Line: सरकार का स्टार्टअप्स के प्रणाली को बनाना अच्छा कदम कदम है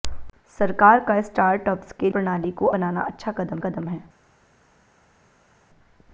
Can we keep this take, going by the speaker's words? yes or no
yes